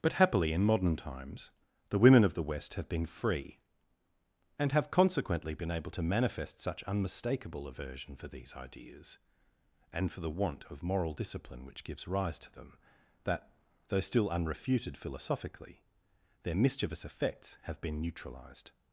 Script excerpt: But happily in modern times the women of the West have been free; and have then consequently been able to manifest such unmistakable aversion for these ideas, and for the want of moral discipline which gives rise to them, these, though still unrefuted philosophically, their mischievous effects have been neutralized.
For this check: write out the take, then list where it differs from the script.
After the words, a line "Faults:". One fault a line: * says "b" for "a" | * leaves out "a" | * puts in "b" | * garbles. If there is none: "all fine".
But happily in modern times the women of the West have been free; and have consequently been able to manifest such unmistakable aversion for these ideas, and for the want of moral discipline which gives rise to them, that, though still unrefuted philosophically, their mischievous effects have been neutralized.
Faults:
* leaves out "then"
* says "that" for "these"